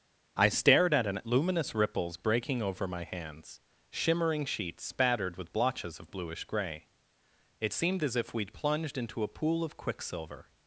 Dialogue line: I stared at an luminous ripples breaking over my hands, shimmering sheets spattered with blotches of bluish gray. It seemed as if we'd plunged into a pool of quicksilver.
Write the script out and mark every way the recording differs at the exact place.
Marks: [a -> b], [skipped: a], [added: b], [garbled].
I stared at an luminous ripples breaking over my hands, shimmering sheets spattered with blotches of bluish gray. It seemed as if we'd plunged into a pool of quicksilver.